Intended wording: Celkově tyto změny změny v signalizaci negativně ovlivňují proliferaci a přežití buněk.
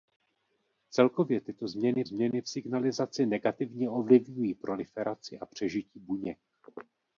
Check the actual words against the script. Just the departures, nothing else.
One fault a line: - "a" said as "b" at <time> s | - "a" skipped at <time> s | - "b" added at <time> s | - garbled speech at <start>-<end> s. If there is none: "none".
none